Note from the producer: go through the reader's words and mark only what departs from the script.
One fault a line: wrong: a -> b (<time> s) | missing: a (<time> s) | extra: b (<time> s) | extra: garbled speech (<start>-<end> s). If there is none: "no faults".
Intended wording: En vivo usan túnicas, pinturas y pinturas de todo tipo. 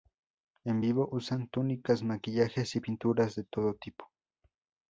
wrong: pinturas -> maquillajes (2.0 s)